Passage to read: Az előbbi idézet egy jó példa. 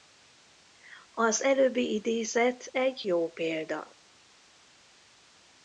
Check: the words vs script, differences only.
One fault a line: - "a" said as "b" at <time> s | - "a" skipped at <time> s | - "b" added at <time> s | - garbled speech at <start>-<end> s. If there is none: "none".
none